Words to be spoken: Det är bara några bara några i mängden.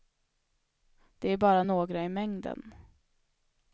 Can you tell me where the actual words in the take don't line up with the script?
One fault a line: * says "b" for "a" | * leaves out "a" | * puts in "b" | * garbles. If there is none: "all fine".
* leaves out "bara några"